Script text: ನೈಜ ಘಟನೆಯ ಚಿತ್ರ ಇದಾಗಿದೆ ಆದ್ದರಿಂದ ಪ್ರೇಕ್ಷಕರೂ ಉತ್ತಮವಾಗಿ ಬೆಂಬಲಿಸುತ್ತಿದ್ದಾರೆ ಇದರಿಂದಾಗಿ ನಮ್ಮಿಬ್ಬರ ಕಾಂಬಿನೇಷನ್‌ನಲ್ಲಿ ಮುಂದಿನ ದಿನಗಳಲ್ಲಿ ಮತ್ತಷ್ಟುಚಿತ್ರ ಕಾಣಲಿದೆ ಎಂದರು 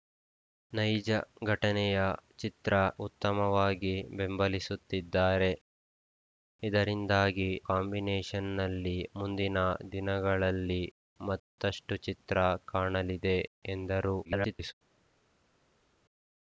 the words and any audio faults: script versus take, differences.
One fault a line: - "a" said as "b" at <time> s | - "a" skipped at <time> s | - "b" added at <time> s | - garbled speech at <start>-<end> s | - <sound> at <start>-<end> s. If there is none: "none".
- "ಇದಾಗಿದೆ ಆದ್ದರಿಂದ ಪ್ರೇಕ್ಷಕರೂ" skipped at 2.7 s
- "ನಮ್ಮಿಬ್ಬರ" skipped at 7.5 s
- garbled speech at 14.2-14.7 s